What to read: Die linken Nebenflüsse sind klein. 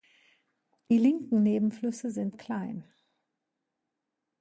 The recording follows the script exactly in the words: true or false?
true